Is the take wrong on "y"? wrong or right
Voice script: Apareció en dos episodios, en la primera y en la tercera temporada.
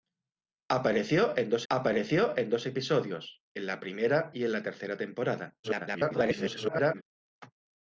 right